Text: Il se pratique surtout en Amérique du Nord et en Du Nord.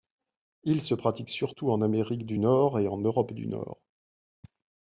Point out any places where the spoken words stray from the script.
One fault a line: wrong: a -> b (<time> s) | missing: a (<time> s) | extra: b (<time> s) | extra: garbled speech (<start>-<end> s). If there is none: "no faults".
extra: Europe (3.0 s)